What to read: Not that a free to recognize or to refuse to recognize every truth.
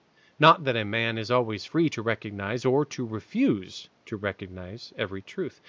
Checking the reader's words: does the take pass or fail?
fail